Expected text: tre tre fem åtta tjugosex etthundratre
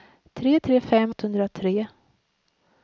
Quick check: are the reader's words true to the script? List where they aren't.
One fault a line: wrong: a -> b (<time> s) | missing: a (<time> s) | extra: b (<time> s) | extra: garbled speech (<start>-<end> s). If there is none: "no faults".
missing: åtta tjugosex (1.1 s)